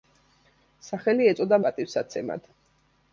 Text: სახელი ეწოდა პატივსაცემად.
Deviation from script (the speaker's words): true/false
false